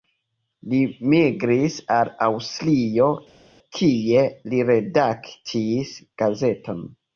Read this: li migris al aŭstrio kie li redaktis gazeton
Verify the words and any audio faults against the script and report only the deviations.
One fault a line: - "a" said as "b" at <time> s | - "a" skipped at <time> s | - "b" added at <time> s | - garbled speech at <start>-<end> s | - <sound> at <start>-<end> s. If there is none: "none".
none